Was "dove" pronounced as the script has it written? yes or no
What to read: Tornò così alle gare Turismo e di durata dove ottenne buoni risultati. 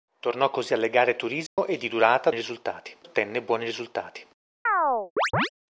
no